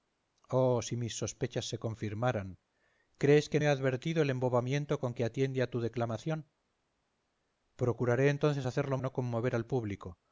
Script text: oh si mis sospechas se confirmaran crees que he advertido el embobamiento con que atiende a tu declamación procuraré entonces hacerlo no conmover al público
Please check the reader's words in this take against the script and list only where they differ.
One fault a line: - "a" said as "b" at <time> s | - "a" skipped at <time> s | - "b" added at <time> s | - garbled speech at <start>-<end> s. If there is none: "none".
none